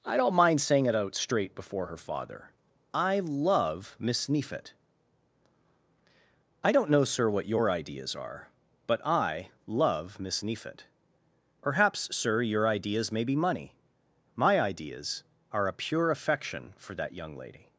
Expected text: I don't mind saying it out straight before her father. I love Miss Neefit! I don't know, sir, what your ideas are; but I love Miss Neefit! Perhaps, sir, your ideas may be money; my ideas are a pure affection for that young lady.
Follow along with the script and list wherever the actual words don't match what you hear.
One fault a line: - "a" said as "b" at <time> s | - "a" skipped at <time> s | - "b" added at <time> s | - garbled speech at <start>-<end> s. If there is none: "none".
none